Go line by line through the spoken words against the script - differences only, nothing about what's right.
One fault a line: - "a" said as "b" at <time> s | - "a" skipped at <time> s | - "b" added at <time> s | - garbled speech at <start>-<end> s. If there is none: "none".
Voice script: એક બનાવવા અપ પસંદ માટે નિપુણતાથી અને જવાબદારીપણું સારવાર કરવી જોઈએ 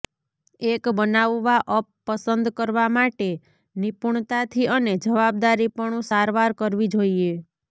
- "કરવા" added at 2.6 s